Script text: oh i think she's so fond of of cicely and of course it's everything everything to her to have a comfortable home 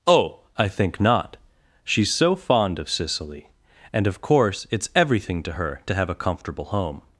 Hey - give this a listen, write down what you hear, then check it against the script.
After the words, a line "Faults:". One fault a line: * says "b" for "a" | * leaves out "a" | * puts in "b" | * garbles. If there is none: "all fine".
oh i think not she's so fond of cicely and of course it's everything to her to have a comfortable home
Faults:
* puts in "not"
* leaves out "of"
* leaves out "everything"